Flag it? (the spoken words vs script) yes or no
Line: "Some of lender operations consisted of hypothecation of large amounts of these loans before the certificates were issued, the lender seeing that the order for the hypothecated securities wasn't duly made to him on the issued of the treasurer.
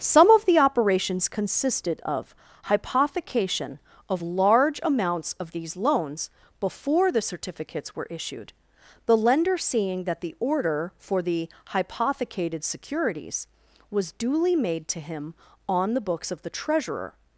yes